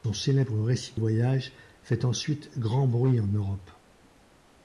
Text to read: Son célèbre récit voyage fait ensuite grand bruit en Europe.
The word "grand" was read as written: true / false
true